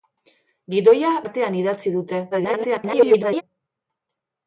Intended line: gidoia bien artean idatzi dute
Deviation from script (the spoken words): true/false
true